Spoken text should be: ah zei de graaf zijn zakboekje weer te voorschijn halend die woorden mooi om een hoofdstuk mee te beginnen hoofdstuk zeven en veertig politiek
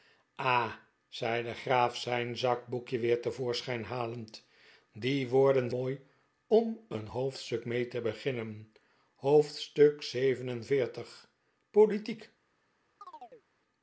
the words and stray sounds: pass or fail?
fail